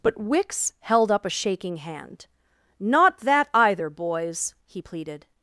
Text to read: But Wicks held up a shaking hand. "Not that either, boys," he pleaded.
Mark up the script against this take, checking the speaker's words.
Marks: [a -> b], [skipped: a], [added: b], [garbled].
But Wicks held up a shaking hand. "Not that either, boys," he pleaded.